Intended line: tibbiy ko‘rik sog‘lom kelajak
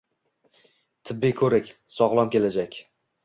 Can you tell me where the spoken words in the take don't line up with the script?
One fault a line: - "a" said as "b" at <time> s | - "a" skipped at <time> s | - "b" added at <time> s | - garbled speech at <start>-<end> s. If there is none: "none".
none